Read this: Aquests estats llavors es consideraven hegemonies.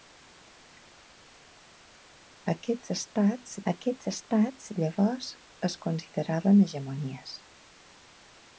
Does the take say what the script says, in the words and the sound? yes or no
no